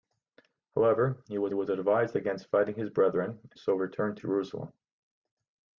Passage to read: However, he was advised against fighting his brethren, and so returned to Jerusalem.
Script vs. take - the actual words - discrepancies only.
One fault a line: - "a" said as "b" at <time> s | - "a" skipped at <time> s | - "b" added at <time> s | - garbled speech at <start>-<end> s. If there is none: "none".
- "was" added at 1.5 s
- "and" skipped at 3.5 s
- "to" skipped at 4.2 s